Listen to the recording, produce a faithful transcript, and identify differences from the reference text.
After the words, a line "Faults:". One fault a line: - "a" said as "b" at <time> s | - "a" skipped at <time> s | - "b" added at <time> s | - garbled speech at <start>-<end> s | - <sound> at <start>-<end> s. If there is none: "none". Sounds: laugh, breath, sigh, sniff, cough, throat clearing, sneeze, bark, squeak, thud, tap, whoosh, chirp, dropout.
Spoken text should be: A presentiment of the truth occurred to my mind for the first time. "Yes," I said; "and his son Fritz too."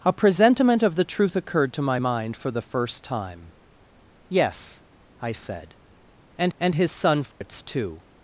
A presentiment of the truth occurred to my mind for the first time. "Yes," I said; "and and his son Fritz too."
Faults:
- "and" added at 6.6 s
- dropout at 7.3-7.4 s